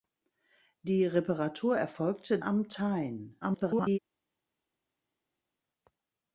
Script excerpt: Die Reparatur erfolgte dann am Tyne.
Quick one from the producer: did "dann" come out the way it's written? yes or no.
no